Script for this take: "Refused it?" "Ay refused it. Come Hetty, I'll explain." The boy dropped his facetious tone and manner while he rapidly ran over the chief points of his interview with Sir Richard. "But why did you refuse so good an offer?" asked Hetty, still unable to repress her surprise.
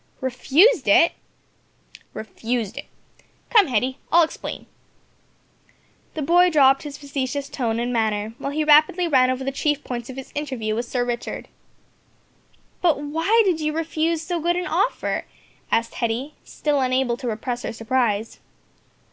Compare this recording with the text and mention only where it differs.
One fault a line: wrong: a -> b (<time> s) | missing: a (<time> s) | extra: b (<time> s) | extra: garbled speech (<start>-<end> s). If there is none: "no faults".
missing: Ay (1.1 s)